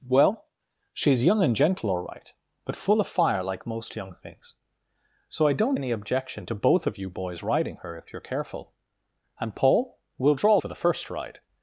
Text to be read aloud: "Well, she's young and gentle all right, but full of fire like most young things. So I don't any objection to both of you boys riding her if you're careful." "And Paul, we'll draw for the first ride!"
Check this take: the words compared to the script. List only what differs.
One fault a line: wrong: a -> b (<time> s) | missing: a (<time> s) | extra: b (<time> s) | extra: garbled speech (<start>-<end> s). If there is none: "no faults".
no faults